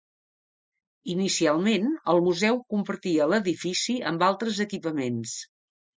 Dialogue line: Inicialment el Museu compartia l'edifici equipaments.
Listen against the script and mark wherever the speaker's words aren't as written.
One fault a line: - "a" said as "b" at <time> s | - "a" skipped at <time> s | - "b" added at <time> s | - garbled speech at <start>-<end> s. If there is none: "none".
- "amb altres" added at 4.1 s